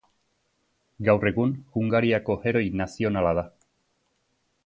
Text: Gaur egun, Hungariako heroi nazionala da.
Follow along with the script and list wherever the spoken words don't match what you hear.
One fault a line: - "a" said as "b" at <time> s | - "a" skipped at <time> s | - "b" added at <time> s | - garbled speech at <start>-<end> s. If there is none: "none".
none